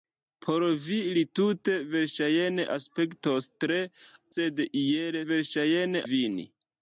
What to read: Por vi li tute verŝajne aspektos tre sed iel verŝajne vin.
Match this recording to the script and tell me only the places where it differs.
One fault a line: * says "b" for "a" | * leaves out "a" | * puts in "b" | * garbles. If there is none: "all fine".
all fine